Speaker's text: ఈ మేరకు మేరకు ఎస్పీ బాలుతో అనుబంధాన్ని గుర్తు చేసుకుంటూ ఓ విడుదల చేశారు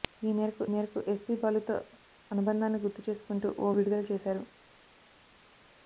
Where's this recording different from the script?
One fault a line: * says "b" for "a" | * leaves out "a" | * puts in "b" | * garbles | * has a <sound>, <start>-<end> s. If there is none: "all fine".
all fine